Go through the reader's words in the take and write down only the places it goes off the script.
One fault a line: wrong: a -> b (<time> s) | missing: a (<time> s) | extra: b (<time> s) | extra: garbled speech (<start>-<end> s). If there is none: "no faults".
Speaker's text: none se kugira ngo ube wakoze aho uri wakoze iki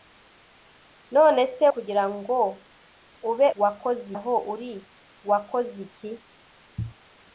no faults